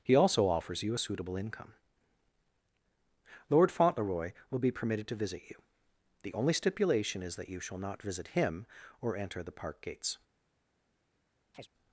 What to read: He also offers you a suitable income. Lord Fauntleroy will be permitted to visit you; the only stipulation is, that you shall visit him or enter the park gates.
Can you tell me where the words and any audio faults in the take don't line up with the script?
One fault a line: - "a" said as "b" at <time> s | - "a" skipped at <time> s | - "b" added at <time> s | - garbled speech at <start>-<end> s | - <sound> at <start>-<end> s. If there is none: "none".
- "not" added at 7.8 s
- chirp at 11.5-11.7 s